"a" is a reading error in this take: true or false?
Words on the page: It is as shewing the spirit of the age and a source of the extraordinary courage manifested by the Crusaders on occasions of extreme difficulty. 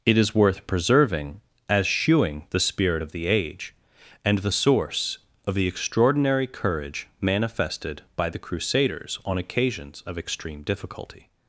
true